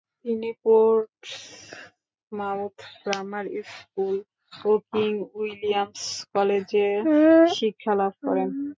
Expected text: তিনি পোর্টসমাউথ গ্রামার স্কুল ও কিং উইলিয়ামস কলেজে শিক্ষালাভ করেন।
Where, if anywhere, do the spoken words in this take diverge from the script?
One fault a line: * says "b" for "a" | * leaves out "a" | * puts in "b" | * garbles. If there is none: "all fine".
all fine